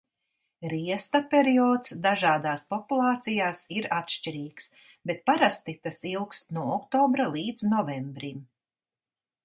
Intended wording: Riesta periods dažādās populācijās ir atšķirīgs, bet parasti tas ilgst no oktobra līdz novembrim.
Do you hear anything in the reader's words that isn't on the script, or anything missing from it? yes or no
no